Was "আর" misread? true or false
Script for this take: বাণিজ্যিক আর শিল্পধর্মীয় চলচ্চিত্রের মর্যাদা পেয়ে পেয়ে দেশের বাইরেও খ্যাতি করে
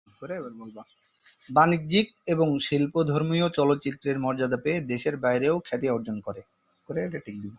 true